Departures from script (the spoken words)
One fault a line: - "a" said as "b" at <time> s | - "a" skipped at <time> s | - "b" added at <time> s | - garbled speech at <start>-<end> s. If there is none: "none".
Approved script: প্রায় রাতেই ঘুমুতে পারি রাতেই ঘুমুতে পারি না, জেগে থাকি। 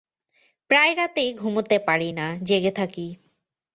- "রাতেই ঘুমুতে পারি" skipped at 2.1 s